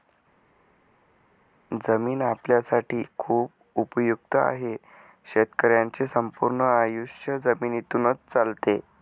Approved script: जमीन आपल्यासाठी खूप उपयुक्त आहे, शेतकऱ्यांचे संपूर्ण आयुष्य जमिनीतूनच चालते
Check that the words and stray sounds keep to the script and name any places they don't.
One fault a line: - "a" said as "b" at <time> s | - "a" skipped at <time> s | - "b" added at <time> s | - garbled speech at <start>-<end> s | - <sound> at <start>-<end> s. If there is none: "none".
none